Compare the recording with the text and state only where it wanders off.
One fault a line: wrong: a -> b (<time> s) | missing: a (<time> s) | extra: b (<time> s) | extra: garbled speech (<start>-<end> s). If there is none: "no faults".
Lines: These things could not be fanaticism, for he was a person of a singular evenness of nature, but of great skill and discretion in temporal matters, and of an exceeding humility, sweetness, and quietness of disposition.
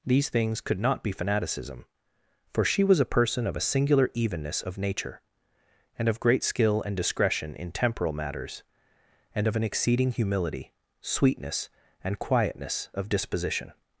wrong: he -> she (2.6 s)
wrong: but -> and (6.0 s)